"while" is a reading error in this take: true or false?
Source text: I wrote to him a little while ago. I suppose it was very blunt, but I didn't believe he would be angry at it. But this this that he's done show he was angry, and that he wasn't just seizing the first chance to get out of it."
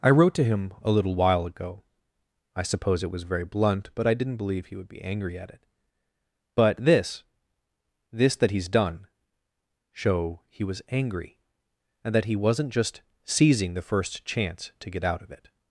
false